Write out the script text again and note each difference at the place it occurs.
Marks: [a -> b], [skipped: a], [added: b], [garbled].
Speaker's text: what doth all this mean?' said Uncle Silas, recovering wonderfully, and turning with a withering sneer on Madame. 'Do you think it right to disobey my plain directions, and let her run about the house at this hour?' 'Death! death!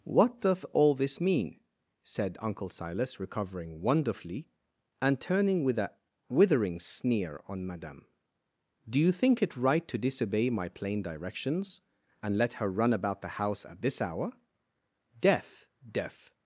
what doth all this mean?' said Uncle Silas, recovering wonderfully, and turning with a withering sneer on Madame. 'Do you think it right to disobey my plain directions, and let her run about the house at this hour?' 'Death! death!